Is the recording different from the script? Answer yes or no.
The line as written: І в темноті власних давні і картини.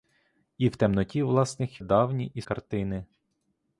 no